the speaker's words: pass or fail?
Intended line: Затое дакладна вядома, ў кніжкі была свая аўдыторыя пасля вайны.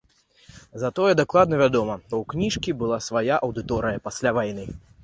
pass